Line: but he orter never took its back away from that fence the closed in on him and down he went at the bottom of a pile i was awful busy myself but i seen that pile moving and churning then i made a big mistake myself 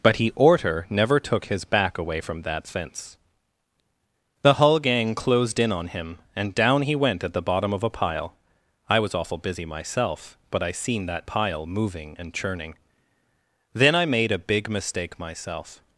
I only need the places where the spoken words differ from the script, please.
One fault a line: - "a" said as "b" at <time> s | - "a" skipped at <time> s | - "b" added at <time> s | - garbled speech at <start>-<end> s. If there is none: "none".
- "its" said as "his" at 1.4 s
- "hull gang" added at 4.5 s